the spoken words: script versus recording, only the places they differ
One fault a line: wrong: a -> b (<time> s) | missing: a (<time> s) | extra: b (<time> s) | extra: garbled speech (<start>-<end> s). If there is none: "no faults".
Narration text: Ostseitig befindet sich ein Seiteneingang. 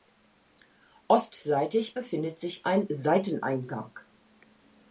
no faults